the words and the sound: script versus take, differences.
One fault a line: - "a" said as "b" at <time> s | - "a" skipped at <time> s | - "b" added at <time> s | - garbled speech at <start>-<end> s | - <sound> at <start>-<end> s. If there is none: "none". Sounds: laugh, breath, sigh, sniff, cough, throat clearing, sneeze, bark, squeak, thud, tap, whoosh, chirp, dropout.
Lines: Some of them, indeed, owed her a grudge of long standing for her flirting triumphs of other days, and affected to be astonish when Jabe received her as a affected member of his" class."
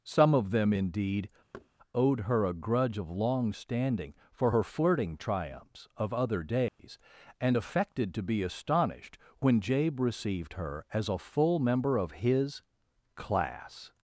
- thud at 1.5-1.7 s
- dropout at 6.7-6.8 s
- "astonish" said as "astonished" at 8.4 s
- "affected" said as "full" at 11.2 s